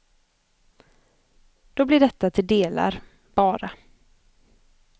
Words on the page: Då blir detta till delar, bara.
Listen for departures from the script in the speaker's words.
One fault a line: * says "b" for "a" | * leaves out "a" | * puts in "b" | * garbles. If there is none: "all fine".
all fine